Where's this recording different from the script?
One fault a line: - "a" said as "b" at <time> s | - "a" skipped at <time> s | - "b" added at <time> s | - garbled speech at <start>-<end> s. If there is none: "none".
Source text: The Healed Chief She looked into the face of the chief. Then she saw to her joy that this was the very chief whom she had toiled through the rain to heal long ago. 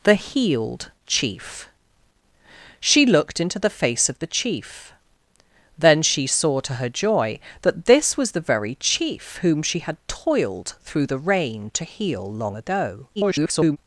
- garbled speech at 13.2-13.8 s